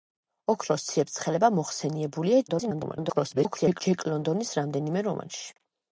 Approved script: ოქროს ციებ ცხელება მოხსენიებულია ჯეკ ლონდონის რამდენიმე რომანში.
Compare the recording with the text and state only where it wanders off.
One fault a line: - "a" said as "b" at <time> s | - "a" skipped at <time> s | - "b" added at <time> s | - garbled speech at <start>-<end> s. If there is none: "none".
- garbled speech at 2.5-3.8 s